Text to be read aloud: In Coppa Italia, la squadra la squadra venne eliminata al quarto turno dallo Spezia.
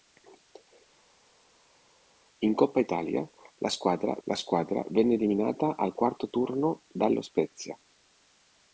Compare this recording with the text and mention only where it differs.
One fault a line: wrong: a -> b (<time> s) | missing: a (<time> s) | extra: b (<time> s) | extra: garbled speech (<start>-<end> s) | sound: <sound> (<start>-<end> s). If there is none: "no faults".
no faults